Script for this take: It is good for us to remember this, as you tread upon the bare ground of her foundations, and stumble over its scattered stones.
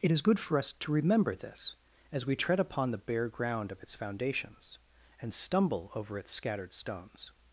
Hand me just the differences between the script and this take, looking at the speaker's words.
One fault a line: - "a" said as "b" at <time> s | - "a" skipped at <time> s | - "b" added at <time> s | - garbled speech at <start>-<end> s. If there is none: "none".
- "you" said as "we" at 2.2 s
- "her" said as "its" at 3.8 s